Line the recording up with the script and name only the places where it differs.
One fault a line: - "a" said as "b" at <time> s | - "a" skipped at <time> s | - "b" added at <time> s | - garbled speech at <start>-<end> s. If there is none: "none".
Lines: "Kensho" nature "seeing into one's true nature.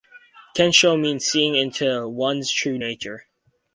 - "nature" said as "means" at 1.0 s